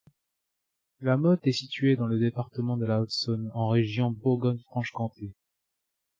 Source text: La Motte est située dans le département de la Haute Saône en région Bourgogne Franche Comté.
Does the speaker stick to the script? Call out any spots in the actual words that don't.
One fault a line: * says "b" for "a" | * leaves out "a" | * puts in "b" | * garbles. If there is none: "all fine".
all fine